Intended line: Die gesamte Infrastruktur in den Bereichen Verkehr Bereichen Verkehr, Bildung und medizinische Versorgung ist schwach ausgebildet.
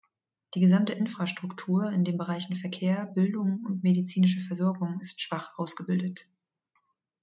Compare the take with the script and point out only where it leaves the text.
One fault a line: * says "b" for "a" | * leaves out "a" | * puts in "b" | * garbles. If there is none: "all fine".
* leaves out "Bereichen Verkehr"